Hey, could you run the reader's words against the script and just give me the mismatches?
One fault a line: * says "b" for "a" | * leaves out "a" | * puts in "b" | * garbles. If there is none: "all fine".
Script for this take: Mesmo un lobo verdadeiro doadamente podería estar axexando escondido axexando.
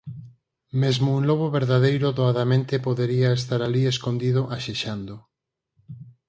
* says "alí" for "axexando"